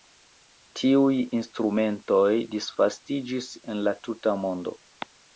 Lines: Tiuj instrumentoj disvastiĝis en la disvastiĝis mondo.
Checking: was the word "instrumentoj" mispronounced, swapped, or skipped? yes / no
no